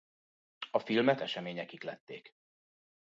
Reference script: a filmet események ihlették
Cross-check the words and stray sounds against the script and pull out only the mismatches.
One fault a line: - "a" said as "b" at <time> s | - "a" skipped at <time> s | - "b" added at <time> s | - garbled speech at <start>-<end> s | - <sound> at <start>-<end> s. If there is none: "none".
none